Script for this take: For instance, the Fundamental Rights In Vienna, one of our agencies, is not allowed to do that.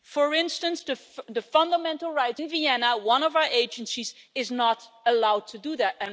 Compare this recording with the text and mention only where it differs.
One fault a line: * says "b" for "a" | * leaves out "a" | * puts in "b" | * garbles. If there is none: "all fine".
all fine